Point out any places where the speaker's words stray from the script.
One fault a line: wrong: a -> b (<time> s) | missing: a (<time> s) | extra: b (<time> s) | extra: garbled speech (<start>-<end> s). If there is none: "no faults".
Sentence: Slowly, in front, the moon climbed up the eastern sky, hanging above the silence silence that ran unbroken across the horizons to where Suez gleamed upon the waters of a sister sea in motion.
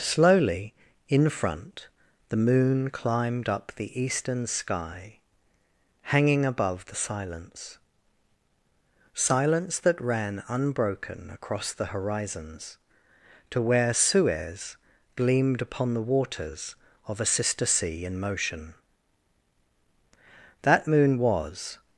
extra: That moon was (20.6 s)